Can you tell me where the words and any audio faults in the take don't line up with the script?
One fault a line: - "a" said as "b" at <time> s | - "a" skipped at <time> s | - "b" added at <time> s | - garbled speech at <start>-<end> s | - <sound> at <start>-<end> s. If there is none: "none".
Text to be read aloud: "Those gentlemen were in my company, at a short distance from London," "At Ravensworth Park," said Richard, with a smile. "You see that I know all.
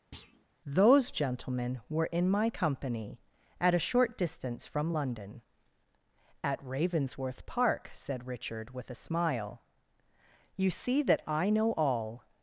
- thud at 0.1-0.5 s